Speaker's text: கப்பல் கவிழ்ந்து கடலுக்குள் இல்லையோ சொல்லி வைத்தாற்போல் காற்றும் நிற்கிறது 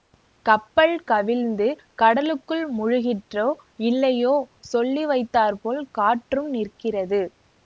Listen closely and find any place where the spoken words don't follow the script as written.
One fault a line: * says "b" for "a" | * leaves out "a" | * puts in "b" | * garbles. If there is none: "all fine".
* puts in "முழுகிற்றோ"